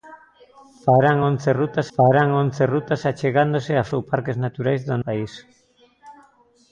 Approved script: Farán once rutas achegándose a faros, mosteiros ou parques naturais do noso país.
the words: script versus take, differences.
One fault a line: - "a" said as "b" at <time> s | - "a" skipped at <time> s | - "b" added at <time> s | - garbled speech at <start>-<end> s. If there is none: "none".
- "farán once rutas" added at 1.9 s
- "faros mosteiros" skipped at 3.8 s
- "noso" skipped at 5.0 s